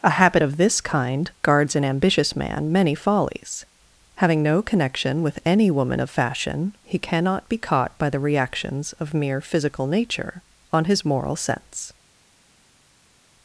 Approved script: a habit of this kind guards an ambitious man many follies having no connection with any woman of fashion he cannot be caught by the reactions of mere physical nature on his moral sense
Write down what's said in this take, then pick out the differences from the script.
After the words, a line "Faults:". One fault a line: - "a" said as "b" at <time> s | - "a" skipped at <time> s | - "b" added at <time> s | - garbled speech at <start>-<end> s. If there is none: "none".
a habit of this kind guards an ambitious man many follies having no connection with any woman of fashion he cannot be caught by the reactions of mere physical nature on his moral sense
Faults:
none